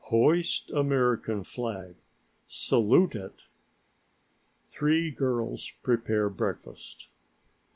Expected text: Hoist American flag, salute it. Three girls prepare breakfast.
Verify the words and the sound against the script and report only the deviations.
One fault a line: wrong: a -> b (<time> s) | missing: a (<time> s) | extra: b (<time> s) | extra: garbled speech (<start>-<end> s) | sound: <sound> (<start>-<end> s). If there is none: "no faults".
no faults